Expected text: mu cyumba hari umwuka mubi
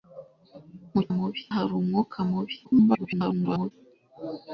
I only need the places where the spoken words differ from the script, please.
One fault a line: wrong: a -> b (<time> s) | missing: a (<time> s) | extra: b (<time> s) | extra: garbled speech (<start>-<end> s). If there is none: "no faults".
wrong: cyumba -> mubi (1.2 s)
extra: garbled speech (2.6-3.7 s)